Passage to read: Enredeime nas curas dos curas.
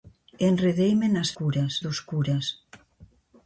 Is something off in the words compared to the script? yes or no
no